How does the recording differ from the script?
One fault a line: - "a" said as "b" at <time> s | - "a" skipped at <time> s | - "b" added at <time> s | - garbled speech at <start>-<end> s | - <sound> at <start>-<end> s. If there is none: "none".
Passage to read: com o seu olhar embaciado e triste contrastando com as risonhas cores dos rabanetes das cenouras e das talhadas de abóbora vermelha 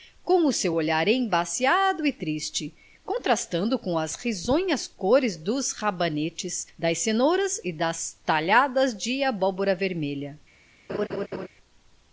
- laugh at 10.9-11.5 s